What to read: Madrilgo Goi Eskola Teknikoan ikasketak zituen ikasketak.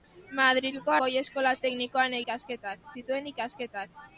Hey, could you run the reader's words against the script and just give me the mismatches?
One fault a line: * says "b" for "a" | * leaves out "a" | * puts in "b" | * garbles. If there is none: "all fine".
all fine